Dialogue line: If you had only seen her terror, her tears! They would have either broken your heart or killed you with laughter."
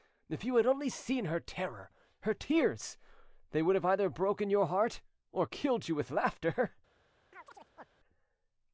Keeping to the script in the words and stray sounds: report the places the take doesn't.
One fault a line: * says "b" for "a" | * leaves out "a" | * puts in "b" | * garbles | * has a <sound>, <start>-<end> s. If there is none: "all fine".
* has a chirp, 7.3-7.9 s